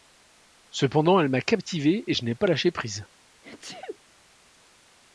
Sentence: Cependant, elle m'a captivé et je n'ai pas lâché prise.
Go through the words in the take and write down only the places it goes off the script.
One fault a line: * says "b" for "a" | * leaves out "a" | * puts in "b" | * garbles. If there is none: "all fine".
all fine